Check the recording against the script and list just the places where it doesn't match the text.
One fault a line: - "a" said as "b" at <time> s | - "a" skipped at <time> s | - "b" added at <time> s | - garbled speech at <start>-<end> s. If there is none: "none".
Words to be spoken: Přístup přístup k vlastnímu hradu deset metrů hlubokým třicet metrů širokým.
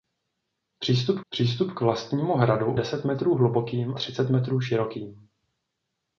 none